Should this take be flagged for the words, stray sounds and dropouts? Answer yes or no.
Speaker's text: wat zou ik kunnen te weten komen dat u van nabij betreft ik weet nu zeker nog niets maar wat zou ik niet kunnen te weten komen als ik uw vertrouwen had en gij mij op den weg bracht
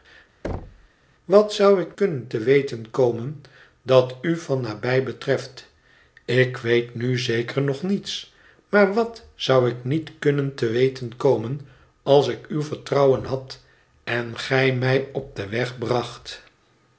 yes